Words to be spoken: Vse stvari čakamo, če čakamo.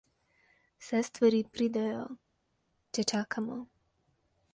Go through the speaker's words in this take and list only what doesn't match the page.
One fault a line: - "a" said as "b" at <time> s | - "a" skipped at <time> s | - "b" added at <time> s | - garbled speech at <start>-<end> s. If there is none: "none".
- "čakamo" said as "pridejo" at 1.6 s